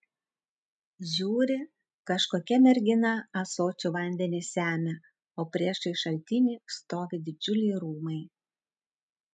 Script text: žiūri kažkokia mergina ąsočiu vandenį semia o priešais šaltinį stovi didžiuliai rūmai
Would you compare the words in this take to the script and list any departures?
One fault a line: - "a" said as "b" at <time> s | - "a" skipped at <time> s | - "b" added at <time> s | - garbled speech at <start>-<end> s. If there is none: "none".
none